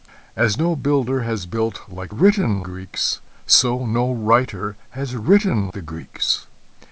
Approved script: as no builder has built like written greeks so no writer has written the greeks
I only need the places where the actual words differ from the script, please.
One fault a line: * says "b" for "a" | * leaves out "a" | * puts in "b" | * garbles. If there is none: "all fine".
all fine